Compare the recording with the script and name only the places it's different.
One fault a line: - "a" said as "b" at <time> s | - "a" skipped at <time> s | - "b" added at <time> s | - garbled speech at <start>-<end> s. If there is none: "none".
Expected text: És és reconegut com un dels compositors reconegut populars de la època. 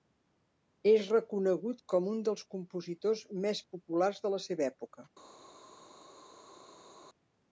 - "és" skipped at 1.1 s
- "reconegut" said as "més" at 3.5 s
- "seva" added at 4.5 s